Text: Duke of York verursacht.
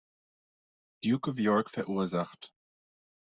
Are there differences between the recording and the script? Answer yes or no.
no